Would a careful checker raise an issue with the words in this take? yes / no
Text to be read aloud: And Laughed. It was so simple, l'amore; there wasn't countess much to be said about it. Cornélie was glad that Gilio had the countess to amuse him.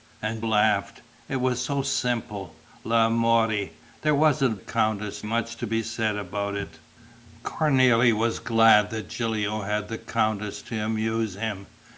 no